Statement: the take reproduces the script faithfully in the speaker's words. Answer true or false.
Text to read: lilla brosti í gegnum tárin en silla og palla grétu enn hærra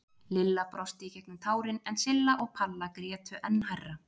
true